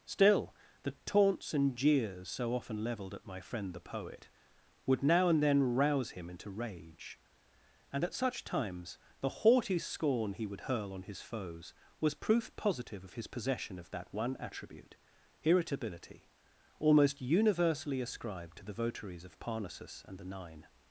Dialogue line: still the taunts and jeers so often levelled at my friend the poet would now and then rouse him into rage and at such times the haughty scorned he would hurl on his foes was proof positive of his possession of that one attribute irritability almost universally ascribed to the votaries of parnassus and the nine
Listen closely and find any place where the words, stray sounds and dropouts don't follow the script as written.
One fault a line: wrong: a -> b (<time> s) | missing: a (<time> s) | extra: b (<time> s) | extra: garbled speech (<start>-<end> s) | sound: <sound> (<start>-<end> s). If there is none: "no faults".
wrong: scorned -> scorn (9.8 s)